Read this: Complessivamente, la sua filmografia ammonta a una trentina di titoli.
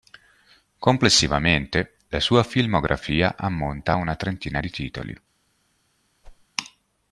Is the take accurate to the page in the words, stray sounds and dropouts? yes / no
no